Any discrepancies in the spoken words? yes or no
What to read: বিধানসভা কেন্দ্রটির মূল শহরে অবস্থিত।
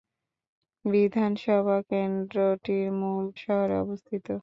no